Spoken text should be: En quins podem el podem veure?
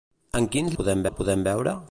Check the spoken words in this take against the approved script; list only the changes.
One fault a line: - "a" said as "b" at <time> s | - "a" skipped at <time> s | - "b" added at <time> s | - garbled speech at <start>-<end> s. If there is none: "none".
none